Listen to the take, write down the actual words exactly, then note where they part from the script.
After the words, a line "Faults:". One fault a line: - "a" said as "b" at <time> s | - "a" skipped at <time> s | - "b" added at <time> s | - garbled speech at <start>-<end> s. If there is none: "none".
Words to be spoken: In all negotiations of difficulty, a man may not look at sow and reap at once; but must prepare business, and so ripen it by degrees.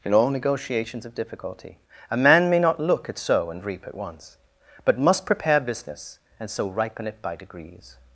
In all negotiations of difficulty, a man may not look at sow and reap at once; but must prepare business, and so ripen it by degrees.
Faults:
none